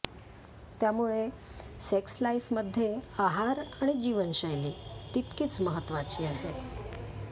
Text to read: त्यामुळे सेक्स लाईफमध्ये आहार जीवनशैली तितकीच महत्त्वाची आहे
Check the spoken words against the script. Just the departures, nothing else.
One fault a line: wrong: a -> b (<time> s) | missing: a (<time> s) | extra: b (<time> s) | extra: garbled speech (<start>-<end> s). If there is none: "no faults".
extra: आणि (3.8 s)